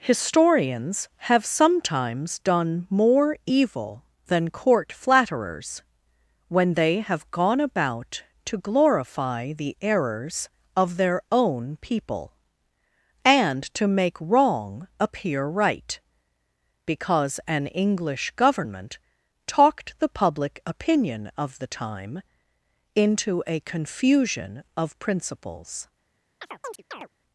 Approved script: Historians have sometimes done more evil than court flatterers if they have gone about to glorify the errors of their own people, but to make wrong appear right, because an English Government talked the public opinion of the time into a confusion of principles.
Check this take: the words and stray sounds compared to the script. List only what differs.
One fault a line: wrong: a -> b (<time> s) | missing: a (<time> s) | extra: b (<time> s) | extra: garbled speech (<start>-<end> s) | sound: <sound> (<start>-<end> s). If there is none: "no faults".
wrong: if -> when (6.5 s)
wrong: but -> and (13.2 s)
sound: chirp (26.4-27.1 s)